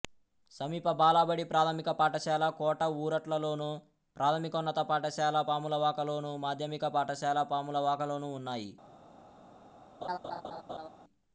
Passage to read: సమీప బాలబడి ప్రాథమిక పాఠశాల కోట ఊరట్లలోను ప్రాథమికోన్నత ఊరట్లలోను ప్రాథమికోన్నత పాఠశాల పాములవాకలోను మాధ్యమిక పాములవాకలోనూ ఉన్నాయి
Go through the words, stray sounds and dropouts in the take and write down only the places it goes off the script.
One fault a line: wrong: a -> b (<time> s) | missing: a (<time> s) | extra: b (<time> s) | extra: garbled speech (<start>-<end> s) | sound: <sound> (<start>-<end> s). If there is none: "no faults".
missing: ఊరట్లలోను ప్రాథమికోన్నత (4.8 s)
extra: పాఠశాల (6.9 s)
sound: laugh (10.0-10.9 s)